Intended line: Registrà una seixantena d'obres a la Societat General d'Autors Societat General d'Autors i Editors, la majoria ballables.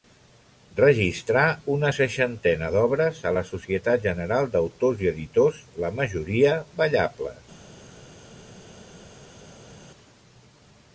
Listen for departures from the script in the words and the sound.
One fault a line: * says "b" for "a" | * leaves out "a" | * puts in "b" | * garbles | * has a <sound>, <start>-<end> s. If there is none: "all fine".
* leaves out "Societat General d'Autors"